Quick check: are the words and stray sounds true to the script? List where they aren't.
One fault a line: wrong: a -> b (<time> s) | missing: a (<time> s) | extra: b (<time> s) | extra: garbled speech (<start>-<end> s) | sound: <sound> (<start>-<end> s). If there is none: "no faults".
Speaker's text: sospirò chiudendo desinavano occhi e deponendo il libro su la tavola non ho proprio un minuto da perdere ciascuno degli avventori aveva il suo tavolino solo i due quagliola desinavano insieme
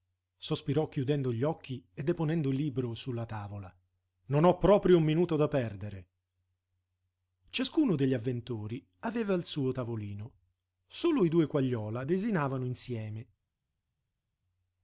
wrong: desinavano -> gli (1.3 s)